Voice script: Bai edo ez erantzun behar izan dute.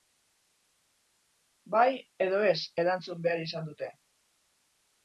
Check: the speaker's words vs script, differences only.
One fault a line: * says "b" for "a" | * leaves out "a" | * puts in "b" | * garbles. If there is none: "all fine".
all fine